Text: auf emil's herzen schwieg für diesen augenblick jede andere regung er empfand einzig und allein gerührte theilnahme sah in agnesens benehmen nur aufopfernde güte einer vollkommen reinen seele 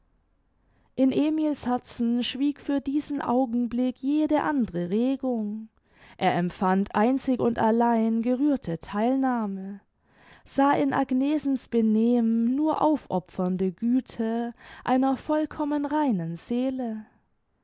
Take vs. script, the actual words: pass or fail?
fail